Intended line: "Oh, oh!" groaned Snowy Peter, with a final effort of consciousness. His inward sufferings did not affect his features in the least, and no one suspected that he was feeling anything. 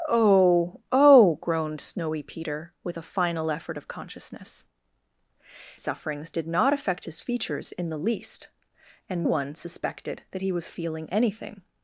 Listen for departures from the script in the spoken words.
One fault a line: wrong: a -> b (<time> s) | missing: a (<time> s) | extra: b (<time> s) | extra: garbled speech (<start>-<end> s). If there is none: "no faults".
missing: His inward (4.7 s)
missing: no (9.3 s)